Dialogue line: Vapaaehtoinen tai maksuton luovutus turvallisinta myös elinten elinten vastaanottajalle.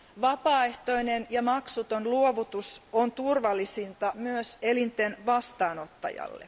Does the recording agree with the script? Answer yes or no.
no